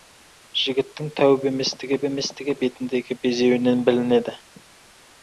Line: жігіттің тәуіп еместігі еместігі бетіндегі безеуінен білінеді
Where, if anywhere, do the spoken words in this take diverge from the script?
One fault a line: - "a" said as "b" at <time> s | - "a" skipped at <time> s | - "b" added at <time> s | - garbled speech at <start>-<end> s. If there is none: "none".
none